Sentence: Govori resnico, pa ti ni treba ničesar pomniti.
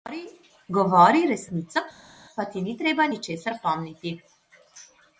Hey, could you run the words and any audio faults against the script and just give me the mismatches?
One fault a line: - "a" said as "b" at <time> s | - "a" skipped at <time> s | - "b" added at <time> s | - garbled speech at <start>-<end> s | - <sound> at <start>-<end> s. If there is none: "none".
none